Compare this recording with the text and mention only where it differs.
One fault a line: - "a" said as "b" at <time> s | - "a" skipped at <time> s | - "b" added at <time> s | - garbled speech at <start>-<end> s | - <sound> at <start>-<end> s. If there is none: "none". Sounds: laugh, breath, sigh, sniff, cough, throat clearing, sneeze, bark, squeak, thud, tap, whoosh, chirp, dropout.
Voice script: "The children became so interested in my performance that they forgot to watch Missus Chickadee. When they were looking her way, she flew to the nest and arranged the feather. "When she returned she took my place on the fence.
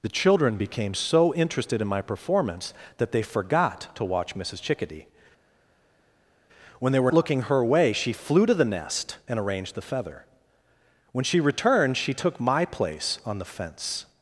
none